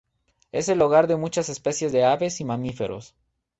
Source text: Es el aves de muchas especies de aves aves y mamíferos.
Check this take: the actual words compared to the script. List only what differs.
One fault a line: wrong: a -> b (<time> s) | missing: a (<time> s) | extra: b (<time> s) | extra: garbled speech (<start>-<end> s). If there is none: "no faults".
wrong: aves -> hogar (0.8 s)
missing: aves (2.4 s)